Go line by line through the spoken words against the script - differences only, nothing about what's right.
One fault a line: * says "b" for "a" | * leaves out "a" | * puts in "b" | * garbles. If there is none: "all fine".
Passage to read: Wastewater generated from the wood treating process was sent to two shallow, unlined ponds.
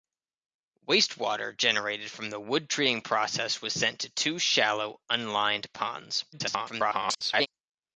* garbles